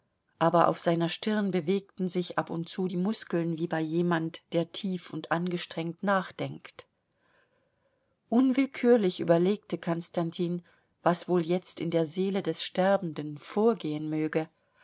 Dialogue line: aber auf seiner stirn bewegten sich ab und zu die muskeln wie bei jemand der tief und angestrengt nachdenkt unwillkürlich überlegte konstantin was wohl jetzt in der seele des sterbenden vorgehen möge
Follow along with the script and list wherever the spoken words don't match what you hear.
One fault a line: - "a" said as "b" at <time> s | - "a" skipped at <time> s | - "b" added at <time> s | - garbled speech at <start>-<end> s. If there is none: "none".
none